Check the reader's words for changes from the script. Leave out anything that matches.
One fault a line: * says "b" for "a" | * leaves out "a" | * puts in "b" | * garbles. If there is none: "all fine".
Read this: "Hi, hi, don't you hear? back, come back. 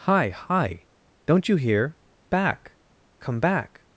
all fine